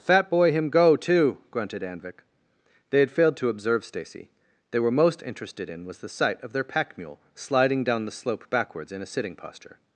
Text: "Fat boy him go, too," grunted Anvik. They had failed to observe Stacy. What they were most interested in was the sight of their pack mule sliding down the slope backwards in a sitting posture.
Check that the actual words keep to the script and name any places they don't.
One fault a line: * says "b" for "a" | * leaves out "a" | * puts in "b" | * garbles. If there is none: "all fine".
* leaves out "What"